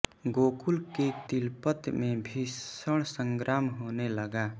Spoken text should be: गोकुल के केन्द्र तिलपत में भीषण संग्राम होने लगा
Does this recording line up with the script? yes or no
no